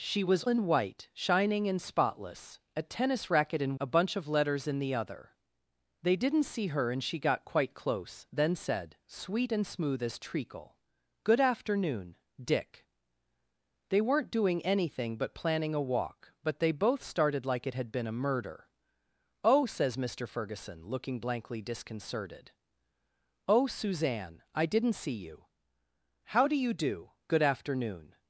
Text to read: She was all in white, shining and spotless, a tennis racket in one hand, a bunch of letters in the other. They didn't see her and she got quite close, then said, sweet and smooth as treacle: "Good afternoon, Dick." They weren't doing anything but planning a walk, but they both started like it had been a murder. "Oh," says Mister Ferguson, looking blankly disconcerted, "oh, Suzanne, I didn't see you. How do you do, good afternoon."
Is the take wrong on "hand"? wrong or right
wrong